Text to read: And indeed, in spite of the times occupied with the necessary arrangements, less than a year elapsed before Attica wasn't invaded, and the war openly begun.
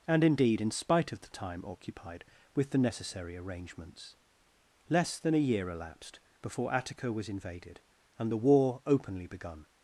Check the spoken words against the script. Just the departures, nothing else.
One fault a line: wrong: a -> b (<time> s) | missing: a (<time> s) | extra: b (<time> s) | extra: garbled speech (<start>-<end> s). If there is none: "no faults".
wrong: times -> time (1.3 s)
wrong: wasn't -> was (7.1 s)